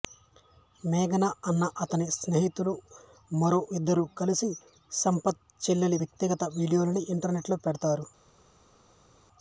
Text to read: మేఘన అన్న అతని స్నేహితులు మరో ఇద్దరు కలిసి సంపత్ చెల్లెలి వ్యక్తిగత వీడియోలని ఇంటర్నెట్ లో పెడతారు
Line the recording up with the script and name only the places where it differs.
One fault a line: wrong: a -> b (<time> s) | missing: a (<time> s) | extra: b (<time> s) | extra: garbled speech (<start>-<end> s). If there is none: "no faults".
no faults